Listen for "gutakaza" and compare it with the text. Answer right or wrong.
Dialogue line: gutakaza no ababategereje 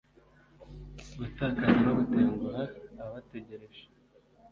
right